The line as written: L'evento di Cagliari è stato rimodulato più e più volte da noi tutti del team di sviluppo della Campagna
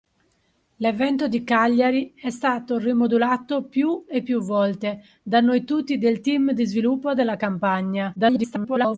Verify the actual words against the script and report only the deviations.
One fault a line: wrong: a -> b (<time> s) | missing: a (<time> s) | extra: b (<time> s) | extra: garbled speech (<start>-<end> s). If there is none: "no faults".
extra: garbled speech (8.2-9.0 s)